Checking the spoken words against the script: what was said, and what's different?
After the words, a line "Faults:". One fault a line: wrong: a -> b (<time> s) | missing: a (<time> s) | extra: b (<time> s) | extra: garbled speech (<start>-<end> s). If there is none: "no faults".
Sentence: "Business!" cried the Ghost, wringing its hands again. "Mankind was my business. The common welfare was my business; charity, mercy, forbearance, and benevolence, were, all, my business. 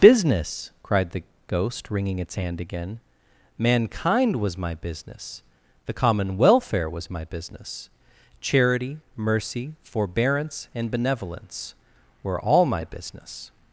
"Business!" cried the Ghost, wringing its hand again. "Mankind was my business. The common welfare was my business; charity, mercy, forbearance, and benevolence, were, all, my business.
Faults:
wrong: hands -> hand (2.3 s)